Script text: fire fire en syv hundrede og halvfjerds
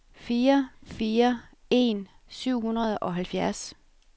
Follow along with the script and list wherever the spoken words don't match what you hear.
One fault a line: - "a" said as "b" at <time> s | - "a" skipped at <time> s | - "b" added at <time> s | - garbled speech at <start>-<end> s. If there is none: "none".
none